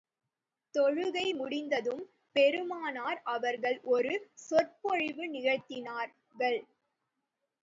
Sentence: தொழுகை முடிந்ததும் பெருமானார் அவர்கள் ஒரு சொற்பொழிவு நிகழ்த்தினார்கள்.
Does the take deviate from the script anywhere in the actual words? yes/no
no